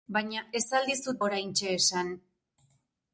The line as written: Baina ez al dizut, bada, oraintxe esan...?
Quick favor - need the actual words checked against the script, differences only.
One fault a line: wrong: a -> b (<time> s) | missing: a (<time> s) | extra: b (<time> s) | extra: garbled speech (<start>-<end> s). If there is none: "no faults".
missing: bada (1.2 s)